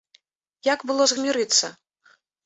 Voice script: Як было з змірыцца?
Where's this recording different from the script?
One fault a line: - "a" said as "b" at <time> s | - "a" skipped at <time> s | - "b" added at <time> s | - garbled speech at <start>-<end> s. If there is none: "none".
none